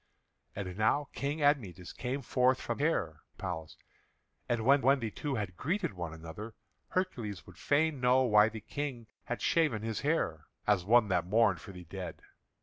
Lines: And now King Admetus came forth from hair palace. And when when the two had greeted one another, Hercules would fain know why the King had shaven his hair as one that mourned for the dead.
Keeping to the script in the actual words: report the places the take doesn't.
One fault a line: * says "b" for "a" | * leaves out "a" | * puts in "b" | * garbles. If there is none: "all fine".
all fine